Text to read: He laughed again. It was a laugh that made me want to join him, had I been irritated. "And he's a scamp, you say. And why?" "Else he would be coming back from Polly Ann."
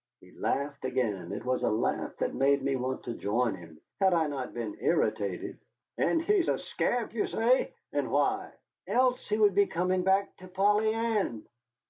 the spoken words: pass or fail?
fail